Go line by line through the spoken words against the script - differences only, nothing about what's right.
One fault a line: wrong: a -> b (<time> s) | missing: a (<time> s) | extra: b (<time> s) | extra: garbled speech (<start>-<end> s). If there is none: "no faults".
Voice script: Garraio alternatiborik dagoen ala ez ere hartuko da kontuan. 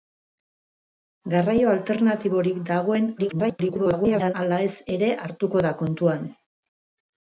extra: garbled speech (3.2-4.3 s)